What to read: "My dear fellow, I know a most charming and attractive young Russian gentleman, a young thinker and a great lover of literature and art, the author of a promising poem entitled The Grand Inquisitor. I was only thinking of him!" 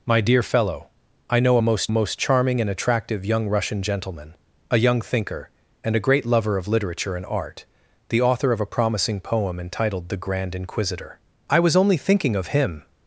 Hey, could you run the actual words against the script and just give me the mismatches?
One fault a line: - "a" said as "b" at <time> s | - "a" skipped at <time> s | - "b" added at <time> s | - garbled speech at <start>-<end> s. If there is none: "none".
- "most" added at 1.9 s